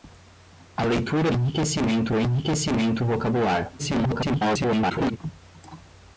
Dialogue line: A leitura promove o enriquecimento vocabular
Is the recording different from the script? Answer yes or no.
yes